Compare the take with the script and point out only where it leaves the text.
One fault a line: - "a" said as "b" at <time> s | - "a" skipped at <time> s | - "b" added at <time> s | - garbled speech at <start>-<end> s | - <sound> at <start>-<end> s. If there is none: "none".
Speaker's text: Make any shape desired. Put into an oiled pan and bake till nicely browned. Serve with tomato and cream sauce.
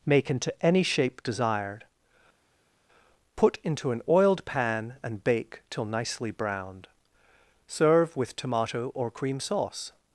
- "into" added at 0.3 s
- "and" said as "or" at 8.9 s